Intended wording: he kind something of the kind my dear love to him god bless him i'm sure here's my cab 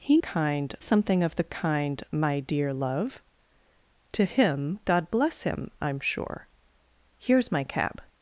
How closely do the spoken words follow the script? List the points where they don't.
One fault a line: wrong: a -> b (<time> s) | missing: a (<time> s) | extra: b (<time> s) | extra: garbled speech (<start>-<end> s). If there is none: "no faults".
no faults